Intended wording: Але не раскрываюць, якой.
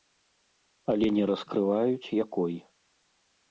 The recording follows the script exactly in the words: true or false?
true